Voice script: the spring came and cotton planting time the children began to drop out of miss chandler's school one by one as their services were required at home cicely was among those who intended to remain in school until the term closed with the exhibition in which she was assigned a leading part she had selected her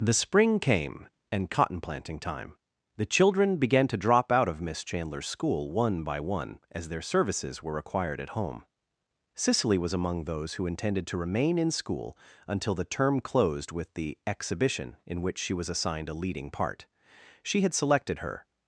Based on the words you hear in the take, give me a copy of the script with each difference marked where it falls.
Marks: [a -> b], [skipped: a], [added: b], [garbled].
the spring came and cotton planting time the children began to drop out of miss chandler's school one by one as their services were required at home cicely was among those who intended to remain in school until the term closed with the exhibition in which she was assigned a leading part she had selected her